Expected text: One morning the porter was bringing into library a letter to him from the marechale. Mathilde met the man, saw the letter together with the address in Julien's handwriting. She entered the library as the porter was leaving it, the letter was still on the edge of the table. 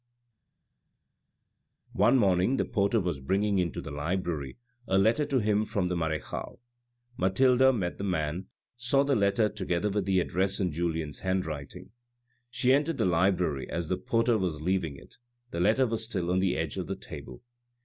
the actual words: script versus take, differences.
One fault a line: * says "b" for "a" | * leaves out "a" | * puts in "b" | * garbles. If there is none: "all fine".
* puts in "the"